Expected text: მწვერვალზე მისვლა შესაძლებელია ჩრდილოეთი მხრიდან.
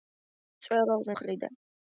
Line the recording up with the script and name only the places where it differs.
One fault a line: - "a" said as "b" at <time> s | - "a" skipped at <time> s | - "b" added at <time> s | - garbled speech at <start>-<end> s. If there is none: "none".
- "მისვლა შესაძლებელია ჩრდილოეთი" skipped at 1.1 s